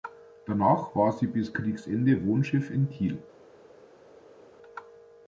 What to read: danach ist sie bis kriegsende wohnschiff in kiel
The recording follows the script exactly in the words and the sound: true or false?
false